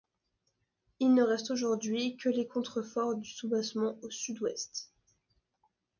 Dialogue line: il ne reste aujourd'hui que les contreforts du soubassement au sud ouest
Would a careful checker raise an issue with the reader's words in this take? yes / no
no